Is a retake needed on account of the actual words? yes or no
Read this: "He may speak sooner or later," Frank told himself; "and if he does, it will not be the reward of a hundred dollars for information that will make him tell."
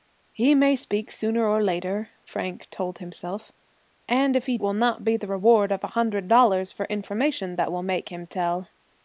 yes